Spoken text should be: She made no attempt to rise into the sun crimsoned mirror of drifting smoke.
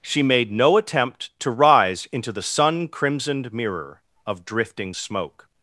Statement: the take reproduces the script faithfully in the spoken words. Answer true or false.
true